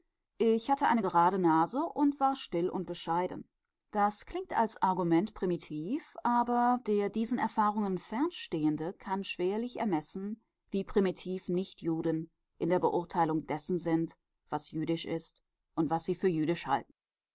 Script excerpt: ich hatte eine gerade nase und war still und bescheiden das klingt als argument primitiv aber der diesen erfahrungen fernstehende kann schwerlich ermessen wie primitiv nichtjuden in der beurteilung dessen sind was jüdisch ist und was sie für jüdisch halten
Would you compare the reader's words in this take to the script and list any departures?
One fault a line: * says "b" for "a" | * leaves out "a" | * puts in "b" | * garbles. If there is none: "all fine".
all fine